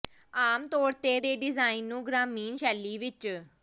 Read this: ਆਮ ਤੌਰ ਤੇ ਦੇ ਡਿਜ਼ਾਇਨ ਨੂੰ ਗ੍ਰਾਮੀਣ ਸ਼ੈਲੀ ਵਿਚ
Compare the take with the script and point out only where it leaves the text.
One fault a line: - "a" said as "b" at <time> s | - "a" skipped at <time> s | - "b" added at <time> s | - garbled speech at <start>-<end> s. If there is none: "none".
none